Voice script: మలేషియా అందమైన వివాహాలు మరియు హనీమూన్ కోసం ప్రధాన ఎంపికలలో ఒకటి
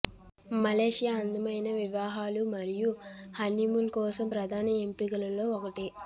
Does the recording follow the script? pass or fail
pass